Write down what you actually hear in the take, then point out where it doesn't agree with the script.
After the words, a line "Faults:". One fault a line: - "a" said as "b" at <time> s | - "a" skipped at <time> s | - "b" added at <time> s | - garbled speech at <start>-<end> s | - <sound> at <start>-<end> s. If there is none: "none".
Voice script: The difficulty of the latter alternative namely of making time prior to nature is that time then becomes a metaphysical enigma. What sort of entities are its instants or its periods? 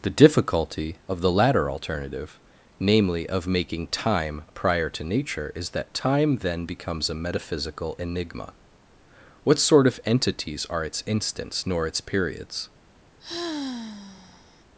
The difficulty of the latter alternative namely of making time prior to nature is that time then becomes a metaphysical enigma. What sort of entities are its instants nor its periods?
Faults:
- "or" said as "nor" at 11.7 s
- sigh at 13.2-14.6 s